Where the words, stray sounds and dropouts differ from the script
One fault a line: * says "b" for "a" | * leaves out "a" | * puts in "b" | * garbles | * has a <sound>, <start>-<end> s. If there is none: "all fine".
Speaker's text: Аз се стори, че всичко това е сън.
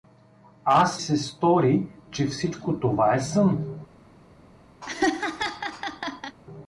* has a laugh, 4.8-6.4 s